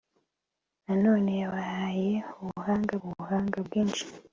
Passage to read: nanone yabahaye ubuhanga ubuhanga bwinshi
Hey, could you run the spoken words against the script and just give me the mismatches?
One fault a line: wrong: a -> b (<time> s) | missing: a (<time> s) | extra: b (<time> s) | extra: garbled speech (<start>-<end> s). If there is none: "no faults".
no faults